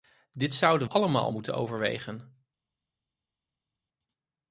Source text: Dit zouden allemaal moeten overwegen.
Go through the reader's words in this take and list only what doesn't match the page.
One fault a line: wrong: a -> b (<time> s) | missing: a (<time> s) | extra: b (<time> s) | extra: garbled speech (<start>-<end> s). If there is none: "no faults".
no faults